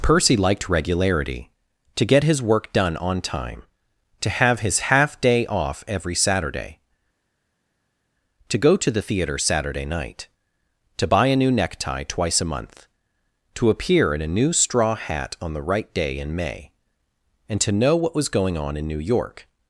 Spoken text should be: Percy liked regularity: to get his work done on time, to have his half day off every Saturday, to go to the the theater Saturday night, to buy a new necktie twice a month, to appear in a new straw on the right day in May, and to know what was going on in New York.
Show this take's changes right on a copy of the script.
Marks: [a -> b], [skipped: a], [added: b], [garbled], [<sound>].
Percy liked regularity: to get his work done on time, to have his half day off every Saturday, to go to the [skipped: the] theater Saturday night, to buy a new necktie twice a month, to appear in a new straw [added: hat] on the right day in May, and to know what was going on in New York.